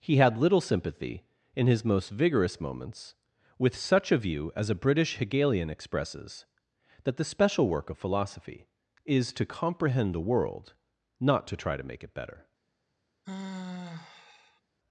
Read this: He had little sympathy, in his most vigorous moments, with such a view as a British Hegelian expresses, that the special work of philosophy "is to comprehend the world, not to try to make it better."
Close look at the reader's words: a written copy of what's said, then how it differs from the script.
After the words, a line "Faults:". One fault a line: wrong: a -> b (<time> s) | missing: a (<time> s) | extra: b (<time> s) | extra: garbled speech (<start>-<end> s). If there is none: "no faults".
He had little sympathy, in his most vigorous moments, with such a view as a British Hegelian expresses, that the special work of philosophy "is to comprehend the world, not to try to make it better."
Faults:
no faults